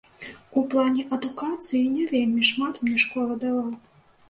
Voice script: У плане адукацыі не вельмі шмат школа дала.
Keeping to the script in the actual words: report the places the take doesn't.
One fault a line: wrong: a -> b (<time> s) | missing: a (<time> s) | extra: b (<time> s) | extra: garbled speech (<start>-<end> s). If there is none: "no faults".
extra: мне (2.9 s)